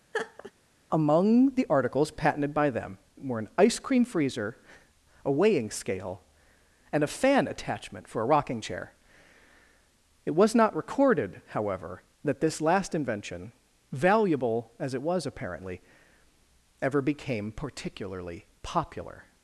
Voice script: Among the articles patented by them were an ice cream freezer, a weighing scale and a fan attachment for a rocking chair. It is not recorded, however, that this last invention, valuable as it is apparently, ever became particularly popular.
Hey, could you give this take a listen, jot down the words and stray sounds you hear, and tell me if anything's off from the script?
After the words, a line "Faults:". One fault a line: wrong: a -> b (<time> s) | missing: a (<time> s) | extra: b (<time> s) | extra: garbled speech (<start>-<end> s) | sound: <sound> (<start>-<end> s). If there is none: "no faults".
Among the articles patented by them were an ice cream freezer, a weighing scale and a fan attachment for a rocking chair. It was not recorded, however, that this last invention, valuable as it was apparently, ever became particularly popular.
Faults:
sound: laugh (0.1-0.5 s)
wrong: is -> was (10.3 s)
wrong: is -> was (15.0 s)